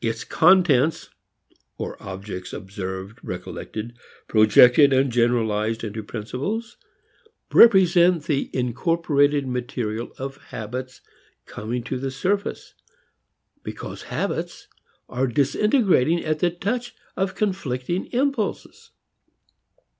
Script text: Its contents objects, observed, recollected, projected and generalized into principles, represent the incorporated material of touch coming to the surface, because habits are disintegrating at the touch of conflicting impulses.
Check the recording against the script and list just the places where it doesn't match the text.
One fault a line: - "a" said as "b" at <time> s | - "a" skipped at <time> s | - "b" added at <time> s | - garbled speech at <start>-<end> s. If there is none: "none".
- "or" added at 1.8 s
- "touch" said as "habits" at 10.5 s